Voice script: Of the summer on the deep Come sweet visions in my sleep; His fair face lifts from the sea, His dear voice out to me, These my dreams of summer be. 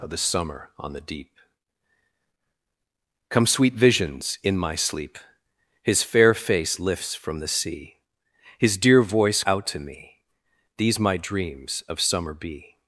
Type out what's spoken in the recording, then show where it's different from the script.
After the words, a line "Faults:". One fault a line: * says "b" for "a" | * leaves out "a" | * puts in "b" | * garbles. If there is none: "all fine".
Of the summer on the deep Come sweet visions in my sleep; His fair face lifts from the sea, His dear voice out to me, These my dreams of summer be.
Faults:
all fine